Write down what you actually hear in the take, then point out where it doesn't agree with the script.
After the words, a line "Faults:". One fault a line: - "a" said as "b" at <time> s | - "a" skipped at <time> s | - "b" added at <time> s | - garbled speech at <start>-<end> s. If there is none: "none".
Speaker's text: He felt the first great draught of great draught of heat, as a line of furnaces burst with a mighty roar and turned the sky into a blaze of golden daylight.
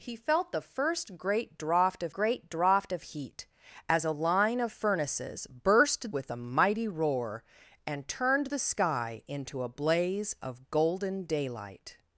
He felt the first great draught of great draught of heat, as a line of furnaces burst with a mighty roar and turned the sky into a blaze of golden daylight.
Faults:
none